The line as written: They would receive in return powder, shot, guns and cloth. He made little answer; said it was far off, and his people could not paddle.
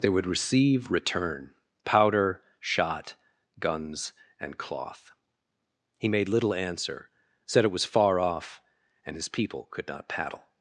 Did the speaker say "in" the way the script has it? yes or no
no